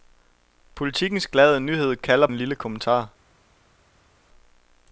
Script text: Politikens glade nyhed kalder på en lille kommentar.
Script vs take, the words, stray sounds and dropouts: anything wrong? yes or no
yes